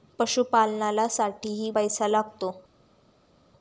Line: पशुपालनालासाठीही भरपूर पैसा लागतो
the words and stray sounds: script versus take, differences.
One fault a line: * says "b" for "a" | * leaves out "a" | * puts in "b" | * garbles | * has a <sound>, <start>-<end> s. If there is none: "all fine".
* leaves out "भरपूर"